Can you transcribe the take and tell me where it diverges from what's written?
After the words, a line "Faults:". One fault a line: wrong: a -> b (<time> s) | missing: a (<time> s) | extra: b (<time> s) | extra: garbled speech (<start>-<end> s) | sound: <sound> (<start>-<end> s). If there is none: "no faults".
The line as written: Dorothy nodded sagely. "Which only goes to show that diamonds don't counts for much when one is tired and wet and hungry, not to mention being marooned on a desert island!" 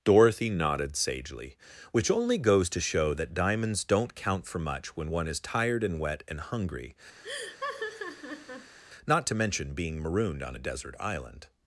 Dorothy nodded sagely. "Which only goes to show that diamonds don't count for much when one is tired and wet and hungry, not to mention being marooned on a desert island!"
Faults:
wrong: counts -> count (4.2 s)
sound: laugh (7.2-8.8 s)